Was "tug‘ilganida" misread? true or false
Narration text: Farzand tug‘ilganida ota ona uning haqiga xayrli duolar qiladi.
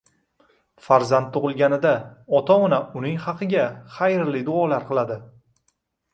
false